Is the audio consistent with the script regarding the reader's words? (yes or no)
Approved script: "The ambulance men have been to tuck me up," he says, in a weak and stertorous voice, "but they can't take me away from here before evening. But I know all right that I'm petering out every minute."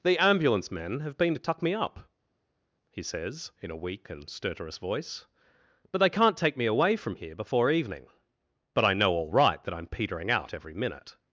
yes